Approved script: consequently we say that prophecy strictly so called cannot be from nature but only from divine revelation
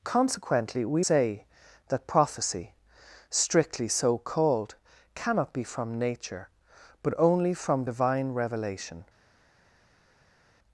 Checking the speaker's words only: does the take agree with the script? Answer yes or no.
yes